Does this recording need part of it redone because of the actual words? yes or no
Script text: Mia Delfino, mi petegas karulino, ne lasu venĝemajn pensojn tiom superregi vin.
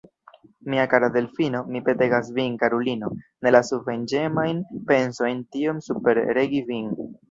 yes